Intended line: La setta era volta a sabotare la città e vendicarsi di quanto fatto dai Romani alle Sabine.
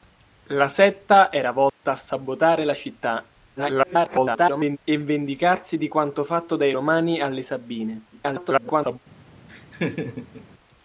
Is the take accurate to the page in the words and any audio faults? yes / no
no